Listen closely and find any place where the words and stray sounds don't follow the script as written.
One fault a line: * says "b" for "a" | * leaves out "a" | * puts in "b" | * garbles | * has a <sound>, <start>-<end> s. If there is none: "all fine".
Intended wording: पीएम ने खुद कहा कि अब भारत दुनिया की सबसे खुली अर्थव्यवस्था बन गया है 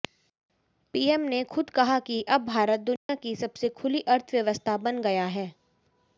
* has a dropout, 3.0-3.1 s